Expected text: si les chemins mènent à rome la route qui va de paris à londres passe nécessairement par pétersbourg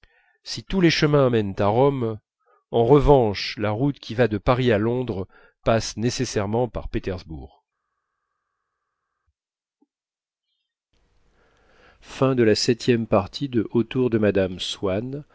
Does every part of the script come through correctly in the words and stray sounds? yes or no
no